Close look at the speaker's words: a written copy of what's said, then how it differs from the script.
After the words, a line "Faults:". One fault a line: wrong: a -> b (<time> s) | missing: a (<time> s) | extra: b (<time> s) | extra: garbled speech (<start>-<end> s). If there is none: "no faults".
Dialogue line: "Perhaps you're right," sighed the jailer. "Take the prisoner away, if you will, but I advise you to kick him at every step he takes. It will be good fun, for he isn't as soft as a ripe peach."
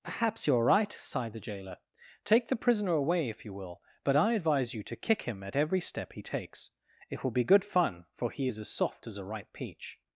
"Perhaps you're right," sighed the jailer. "Take the prisoner away, if you will, but I advise you to kick him at every step he takes. It will be good fun, for he is as soft as a ripe peach."
Faults:
wrong: isn't -> is (8.4 s)